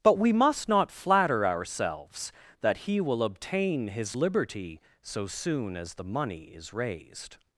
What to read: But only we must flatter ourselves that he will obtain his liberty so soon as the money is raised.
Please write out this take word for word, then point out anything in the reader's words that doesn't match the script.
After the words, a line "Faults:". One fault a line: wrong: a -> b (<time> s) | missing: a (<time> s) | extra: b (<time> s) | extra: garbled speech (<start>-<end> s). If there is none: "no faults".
But we must not flatter ourselves that he will obtain his liberty so soon as the money is raised.
Faults:
missing: only (0.2 s)
extra: not (0.7 s)